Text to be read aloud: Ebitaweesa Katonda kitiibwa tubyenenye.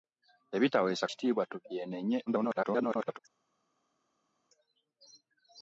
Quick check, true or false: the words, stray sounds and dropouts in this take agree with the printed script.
false